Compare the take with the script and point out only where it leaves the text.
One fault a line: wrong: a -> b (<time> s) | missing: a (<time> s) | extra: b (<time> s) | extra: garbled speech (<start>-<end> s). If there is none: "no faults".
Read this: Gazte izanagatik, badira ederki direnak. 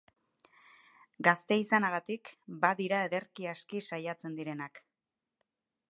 extra: aski saiatzen (3.5 s)